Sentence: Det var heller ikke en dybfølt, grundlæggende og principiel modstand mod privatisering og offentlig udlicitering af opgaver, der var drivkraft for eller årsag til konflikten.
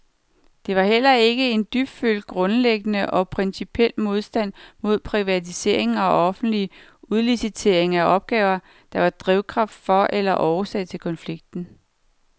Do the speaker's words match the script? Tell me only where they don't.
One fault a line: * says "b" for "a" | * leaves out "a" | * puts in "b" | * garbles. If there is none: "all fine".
all fine